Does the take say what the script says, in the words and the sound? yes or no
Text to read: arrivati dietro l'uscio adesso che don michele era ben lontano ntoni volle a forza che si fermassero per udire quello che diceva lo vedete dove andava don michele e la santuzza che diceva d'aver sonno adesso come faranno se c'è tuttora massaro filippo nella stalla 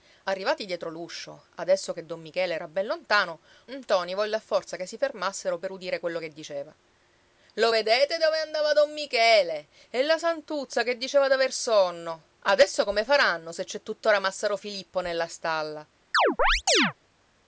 no